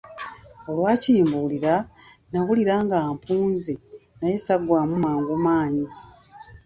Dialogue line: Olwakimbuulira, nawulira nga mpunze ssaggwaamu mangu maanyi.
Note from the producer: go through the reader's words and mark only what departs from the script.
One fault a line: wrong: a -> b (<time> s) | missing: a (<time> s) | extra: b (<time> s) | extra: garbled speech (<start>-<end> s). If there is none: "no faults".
extra: naye (4.2 s)